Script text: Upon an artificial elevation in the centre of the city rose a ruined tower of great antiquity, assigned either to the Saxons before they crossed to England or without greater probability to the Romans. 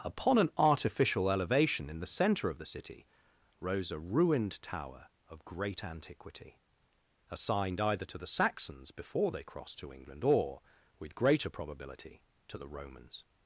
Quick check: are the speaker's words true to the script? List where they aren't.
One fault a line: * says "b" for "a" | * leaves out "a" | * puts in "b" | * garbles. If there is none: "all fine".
* says "with" for "without"